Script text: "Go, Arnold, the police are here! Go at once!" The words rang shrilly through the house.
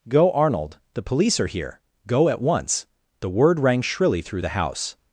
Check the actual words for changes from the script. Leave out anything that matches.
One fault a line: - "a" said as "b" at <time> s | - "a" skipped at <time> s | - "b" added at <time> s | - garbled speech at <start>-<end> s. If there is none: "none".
- "words" said as "word" at 3.3 s